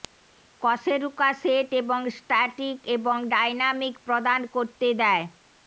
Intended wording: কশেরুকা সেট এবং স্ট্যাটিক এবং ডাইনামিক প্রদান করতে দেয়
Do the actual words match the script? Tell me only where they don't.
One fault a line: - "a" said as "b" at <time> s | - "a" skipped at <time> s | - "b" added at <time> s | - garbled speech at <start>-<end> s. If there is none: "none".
none